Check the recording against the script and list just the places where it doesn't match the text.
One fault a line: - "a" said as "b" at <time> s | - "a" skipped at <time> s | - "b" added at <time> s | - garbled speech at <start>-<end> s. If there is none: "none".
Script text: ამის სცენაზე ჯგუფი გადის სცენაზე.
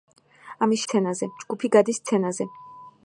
none